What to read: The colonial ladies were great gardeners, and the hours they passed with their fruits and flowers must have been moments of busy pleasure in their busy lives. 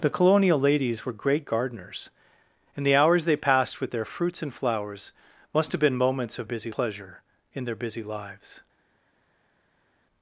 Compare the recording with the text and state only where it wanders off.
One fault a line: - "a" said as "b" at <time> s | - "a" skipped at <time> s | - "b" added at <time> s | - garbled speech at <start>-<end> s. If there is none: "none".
none